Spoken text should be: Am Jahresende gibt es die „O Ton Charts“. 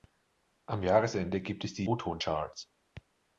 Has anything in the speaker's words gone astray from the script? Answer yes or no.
no